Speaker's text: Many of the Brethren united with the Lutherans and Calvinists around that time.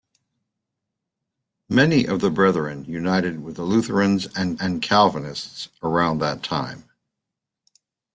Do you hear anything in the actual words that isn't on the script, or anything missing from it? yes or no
yes